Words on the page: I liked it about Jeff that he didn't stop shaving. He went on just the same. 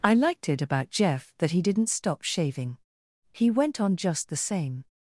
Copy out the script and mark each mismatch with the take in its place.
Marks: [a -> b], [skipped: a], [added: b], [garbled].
I liked it about Jeff that he didn't stop shaving. He went on just the same.